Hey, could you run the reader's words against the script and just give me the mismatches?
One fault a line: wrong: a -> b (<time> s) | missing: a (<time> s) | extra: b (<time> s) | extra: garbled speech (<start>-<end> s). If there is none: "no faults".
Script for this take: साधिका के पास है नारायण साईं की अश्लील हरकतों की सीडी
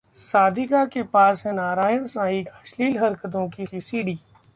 missing: की (2.4 s)
extra: की (3.6 s)